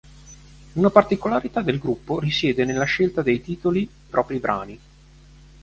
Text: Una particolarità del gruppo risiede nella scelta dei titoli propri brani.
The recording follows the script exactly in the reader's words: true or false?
true